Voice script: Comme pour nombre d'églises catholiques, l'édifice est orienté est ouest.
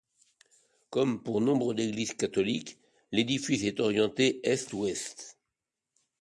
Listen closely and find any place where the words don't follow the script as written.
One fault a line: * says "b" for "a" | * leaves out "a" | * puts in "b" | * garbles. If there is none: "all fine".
all fine